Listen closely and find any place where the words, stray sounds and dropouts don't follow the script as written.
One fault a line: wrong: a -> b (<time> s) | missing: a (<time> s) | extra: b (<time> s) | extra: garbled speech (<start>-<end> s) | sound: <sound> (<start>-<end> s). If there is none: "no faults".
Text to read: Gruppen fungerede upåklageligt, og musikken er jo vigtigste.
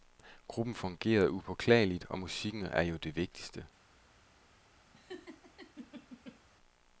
extra: det (3.0 s)
sound: laugh (4.9-6.4 s)